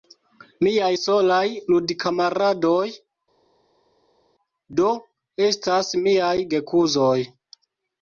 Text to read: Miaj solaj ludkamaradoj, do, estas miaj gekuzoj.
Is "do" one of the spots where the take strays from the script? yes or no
no